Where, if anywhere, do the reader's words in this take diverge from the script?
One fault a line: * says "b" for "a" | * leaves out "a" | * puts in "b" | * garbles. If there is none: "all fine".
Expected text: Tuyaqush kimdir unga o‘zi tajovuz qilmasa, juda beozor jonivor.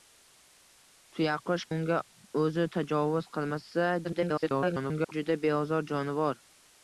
* leaves out "kimdir"
* garbles